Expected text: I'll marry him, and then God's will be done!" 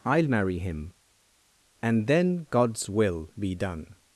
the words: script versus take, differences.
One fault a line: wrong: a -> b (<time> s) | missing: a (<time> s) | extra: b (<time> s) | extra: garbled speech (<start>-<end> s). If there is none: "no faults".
no faults